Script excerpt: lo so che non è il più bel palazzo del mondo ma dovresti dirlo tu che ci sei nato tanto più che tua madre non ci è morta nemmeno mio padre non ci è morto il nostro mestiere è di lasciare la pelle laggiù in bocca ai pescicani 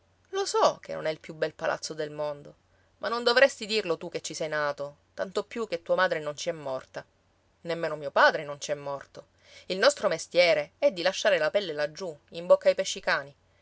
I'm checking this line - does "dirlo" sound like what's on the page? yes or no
yes